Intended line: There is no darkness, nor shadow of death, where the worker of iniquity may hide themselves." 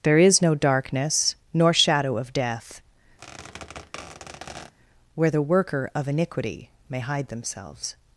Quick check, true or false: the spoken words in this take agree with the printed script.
true